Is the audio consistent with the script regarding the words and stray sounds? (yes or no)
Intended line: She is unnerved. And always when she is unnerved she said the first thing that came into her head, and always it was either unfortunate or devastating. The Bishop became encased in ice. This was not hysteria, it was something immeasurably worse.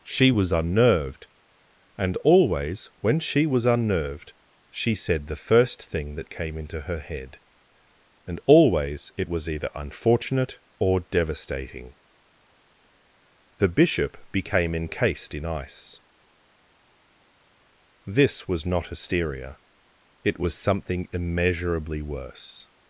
no